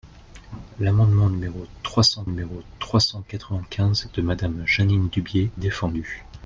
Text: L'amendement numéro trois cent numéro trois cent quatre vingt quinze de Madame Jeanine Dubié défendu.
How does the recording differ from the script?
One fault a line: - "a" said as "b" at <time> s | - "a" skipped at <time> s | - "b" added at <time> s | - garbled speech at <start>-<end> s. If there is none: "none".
none